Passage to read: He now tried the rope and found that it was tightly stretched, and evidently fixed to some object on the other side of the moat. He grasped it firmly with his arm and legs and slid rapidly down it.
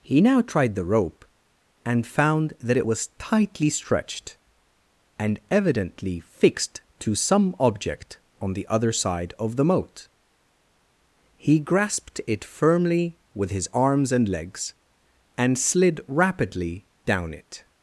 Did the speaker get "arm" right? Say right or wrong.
wrong